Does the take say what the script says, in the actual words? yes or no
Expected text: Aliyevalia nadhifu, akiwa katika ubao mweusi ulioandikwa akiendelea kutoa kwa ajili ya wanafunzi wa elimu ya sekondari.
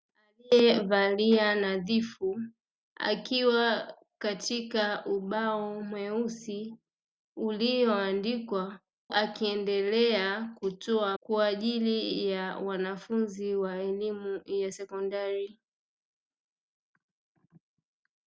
yes